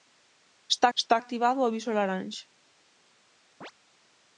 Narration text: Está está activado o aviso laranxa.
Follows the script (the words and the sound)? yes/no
no